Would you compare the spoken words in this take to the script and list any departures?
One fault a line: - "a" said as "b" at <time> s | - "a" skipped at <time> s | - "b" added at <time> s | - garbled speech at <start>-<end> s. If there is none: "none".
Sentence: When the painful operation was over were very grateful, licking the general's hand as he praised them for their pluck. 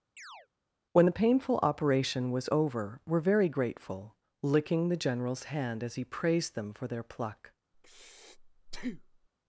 none